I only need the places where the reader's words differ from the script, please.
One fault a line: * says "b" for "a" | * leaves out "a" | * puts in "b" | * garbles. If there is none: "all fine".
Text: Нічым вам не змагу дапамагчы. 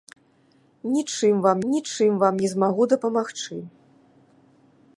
* puts in "нічым вам"